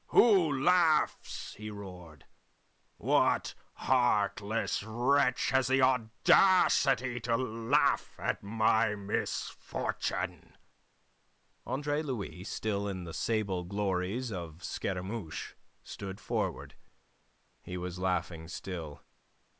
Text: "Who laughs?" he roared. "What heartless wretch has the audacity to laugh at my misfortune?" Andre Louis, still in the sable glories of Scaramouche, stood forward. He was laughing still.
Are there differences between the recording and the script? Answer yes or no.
no